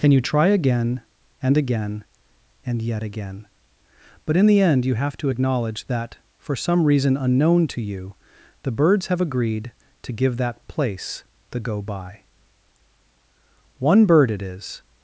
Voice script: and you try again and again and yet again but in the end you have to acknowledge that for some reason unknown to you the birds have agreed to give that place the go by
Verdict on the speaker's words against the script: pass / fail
fail